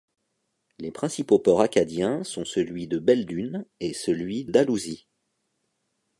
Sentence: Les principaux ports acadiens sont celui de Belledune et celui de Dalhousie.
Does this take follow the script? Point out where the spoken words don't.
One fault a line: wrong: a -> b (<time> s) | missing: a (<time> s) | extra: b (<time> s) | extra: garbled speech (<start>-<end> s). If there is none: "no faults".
missing: de (4.5 s)